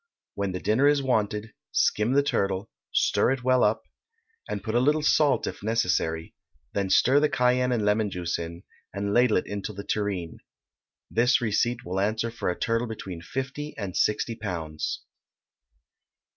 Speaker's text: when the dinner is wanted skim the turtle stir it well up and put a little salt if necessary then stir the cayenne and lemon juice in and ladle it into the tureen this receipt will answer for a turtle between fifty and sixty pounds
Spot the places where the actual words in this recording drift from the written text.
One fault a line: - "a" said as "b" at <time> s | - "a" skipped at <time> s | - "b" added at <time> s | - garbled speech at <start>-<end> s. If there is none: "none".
none